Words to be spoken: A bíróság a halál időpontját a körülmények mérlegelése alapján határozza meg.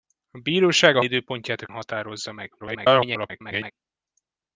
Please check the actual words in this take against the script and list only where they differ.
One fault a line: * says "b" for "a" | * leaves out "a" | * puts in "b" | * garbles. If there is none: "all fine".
* leaves out "halál"
* leaves out "körülmények mérlegelése alapján"
* garbles